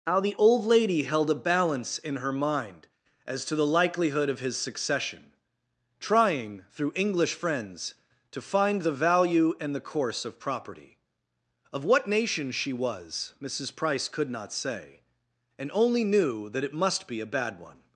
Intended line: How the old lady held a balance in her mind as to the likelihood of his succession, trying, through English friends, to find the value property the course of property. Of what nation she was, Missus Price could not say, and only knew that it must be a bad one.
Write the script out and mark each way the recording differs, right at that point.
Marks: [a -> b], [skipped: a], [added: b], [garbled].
How the old lady held a balance in her mind as to the likelihood of his succession, trying, through English friends, to find the value [property -> and] the course of property. Of what nation she was, Missus Price could not say, and only knew that it must be a bad one.